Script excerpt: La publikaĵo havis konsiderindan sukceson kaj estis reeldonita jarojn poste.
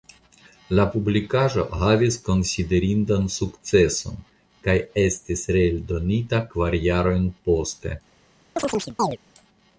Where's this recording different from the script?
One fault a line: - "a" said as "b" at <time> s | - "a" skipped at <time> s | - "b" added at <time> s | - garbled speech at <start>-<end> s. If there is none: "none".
- "kvar" added at 6.5 s